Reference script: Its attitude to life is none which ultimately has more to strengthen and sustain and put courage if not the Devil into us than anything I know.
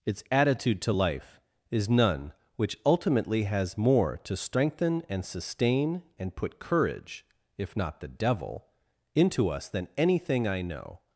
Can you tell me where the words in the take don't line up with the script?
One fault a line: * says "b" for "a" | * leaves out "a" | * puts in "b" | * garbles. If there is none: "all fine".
all fine